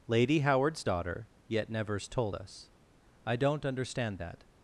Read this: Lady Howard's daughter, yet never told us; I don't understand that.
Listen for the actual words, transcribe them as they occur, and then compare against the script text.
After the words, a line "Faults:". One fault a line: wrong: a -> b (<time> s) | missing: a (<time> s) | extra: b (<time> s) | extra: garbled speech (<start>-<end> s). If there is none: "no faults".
Lady Howard's daughter, yet nevers told us; I don't understand that.
Faults:
wrong: never -> nevers (1.7 s)